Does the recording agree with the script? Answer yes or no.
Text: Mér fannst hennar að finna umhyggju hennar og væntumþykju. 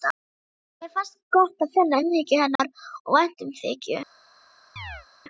no